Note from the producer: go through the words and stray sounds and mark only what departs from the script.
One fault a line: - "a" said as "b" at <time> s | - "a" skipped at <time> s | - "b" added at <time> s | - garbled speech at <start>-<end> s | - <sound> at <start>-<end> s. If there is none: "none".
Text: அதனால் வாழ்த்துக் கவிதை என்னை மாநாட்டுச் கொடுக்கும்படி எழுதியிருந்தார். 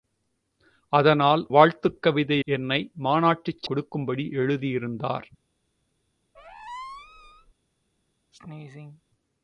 - squeak at 6.3-7.5 s
- sneeze at 8.3-9.0 s